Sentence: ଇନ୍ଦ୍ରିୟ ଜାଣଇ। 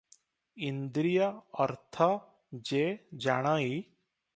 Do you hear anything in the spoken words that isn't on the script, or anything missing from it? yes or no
yes